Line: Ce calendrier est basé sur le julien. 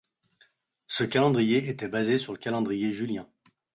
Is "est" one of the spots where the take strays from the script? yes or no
yes